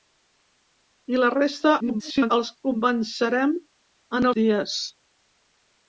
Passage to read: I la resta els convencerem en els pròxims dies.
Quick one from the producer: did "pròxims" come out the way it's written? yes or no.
no